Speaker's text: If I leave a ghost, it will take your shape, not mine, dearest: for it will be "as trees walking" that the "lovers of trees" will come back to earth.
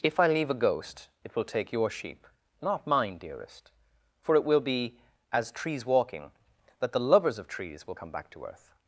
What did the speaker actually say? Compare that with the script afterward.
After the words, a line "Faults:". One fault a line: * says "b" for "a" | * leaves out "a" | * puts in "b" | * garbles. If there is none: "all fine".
If I leave a ghost, it will take your sheep, not mine, dearest: for it will be "as trees walking" that the "lovers of trees" will come back to earth.
Faults:
* says "sheep" for "shape"